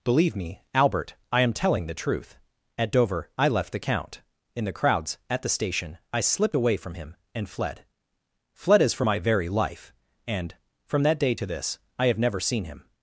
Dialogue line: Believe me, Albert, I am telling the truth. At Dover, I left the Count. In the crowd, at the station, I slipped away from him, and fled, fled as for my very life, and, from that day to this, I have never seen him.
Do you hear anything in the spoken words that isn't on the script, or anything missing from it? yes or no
yes